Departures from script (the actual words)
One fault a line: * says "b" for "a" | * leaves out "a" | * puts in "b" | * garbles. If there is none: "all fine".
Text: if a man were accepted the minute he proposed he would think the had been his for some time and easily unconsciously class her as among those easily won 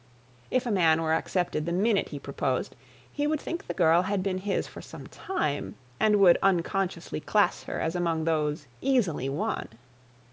* puts in "girl"
* says "would" for "easily"